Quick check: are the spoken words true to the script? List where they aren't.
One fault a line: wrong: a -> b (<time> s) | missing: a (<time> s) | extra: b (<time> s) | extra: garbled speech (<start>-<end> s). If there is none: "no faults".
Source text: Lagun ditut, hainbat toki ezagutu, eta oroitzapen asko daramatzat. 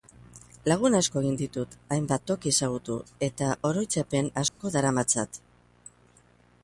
extra: asko egin (1.0 s)